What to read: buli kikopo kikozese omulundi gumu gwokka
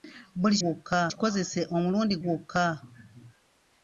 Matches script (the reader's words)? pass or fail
fail